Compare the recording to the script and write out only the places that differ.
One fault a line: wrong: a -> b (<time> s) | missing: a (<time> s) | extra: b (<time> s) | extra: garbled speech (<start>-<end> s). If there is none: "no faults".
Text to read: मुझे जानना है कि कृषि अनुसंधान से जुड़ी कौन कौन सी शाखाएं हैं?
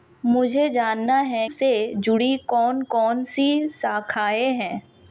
missing: कि कृषि अनुसंधान (1.5 s)